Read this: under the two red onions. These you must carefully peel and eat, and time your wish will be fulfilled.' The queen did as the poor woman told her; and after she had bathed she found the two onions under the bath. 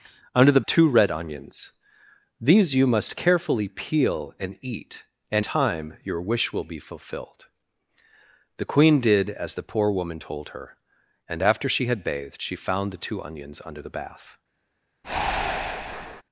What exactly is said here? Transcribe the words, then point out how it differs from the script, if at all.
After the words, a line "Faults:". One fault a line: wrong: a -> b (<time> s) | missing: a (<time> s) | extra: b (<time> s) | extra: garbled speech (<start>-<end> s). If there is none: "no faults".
under the two red onions. These you must carefully peel and eat, and time your wish will be fulfilled.' The queen did as the poor woman told her; and after she had bathed she found the two onions under the bath.
Faults:
no faults